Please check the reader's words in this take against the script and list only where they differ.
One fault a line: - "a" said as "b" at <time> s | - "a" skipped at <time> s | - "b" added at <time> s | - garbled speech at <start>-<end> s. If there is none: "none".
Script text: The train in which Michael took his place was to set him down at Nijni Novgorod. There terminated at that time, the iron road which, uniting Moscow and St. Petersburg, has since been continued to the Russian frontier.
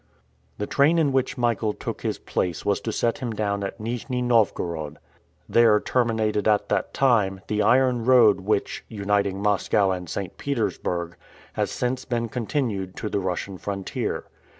none